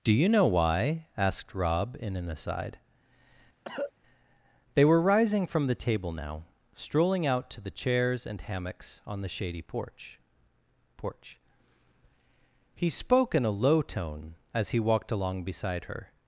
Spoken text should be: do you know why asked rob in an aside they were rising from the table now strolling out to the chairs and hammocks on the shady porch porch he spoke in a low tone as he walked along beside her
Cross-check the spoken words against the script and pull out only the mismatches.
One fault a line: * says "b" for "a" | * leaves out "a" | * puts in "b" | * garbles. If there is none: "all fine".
all fine